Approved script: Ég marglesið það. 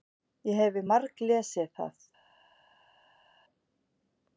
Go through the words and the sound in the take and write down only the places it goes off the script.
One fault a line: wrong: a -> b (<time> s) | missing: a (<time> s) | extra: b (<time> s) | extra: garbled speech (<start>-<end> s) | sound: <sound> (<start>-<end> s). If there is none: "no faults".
extra: hefi (0.6 s)